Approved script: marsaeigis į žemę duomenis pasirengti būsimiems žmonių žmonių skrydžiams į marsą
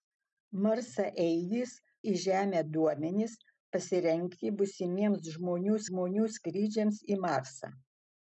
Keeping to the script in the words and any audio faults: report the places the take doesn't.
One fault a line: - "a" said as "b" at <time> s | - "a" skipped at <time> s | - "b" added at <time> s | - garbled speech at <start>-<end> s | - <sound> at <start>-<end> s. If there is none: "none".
none